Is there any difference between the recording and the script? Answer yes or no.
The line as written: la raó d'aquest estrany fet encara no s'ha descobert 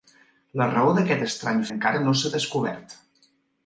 yes